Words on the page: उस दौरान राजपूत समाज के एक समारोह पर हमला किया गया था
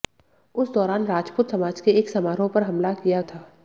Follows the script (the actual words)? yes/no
no